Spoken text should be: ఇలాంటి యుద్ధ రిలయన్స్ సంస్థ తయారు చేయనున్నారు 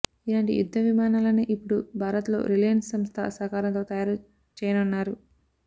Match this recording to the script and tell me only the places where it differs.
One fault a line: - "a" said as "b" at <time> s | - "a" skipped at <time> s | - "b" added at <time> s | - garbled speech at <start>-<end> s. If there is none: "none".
- "విమానాలనే ఇప్పుడు భారత్లో" added at 0.8 s
- "సహకారంతో" added at 3.4 s